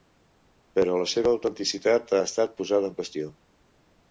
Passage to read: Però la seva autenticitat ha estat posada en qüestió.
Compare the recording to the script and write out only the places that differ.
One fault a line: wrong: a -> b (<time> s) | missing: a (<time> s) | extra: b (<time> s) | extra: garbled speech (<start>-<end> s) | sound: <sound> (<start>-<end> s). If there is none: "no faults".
no faults